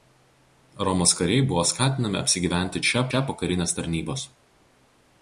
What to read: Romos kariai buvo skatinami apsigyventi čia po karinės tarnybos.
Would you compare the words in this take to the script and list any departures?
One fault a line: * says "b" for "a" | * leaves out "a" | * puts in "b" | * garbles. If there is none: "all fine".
* puts in "čia"